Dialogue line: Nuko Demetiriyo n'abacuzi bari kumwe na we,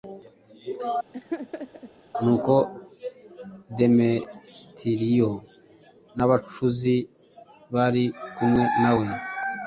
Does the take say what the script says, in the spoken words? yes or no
yes